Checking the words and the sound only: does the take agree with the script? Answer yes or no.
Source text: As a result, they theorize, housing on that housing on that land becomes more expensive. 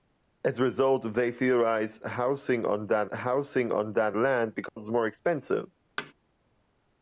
no